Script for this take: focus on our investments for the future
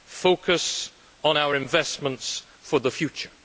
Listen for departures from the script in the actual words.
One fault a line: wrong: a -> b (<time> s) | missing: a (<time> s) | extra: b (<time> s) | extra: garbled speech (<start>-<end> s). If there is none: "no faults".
no faults